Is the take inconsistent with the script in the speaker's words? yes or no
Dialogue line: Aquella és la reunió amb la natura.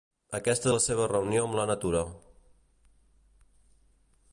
yes